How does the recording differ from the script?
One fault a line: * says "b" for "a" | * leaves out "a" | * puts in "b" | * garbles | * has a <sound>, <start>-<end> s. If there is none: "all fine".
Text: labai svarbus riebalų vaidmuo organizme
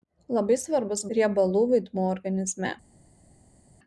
all fine